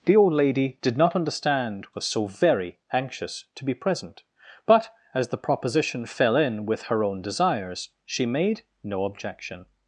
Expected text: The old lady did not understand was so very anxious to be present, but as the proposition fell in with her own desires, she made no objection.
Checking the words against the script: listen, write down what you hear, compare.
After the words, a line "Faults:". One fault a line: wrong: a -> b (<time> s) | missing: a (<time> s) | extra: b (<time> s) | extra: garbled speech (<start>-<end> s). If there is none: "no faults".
The old lady did not understand was so very anxious to be present, but as the proposition fell in with her own desires, she made no objection.
Faults:
no faults